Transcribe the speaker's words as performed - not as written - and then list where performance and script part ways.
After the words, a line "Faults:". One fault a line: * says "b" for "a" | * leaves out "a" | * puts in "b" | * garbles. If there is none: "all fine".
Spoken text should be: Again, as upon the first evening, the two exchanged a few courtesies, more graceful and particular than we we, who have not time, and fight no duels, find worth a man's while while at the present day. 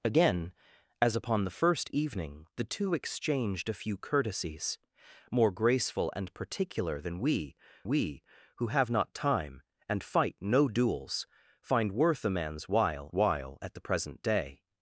Again, as upon the first evening, the two exchanged a few courtesies, more graceful and particular than we we, who have not time, and fight no duels, find worth a man's while while at the present day.
Faults:
all fine